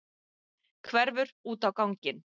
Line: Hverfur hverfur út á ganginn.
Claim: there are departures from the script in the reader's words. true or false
true